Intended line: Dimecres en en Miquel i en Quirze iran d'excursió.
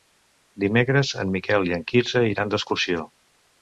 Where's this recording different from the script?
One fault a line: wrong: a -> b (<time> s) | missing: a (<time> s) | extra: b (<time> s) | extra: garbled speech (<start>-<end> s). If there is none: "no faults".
missing: en (1.4 s)